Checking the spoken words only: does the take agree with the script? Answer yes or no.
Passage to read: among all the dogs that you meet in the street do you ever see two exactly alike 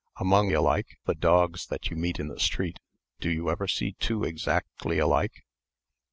no